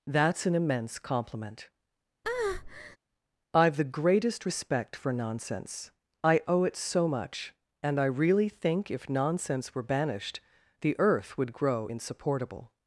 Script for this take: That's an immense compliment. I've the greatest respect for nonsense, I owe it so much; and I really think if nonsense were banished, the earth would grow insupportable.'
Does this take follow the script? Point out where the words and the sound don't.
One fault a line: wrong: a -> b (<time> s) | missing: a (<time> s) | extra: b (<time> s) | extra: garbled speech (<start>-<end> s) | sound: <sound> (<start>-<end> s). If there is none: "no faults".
sound: breath (2.2-3.0 s)